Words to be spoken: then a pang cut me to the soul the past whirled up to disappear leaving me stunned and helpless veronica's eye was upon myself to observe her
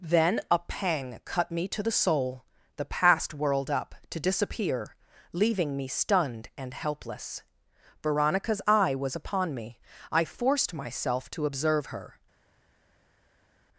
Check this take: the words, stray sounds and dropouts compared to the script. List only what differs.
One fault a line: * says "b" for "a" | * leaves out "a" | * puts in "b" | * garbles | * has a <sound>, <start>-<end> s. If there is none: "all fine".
* puts in "me i forced"